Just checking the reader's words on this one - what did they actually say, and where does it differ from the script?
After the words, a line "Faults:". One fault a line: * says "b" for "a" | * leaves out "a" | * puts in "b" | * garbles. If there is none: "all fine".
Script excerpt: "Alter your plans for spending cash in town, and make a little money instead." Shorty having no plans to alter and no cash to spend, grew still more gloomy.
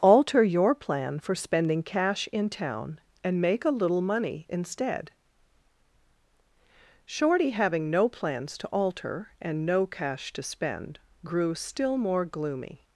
"Alter your plan for spending cash in town, and make a little money instead." Shorty having no plans to alter and no cash to spend, grew still more gloomy.
Faults:
* says "plan" for "plans"